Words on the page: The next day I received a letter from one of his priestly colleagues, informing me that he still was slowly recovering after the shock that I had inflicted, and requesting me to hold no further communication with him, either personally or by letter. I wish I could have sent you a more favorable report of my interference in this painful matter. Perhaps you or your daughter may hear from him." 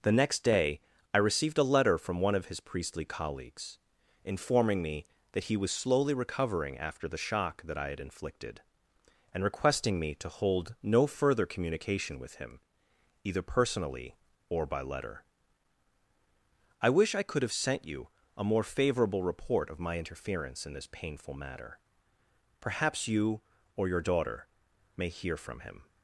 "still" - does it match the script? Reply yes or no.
no